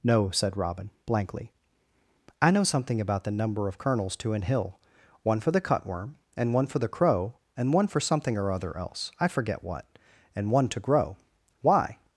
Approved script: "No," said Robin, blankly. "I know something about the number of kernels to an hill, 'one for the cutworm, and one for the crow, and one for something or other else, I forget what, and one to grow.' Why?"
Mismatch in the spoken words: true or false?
false